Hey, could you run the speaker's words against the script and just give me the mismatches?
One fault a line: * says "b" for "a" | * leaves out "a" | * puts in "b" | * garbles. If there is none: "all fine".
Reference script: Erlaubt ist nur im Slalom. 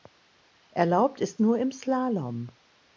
all fine